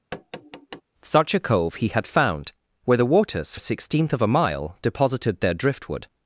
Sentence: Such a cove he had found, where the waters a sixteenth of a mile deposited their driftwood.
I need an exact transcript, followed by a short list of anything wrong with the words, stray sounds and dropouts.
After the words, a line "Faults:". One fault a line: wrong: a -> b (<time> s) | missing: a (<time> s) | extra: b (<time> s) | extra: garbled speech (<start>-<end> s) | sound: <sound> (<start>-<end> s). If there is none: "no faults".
Such a cove he had found, where the waters a sixteenth of a mile deposited their driftwood.
Faults:
sound: tap (0.1-0.8 s)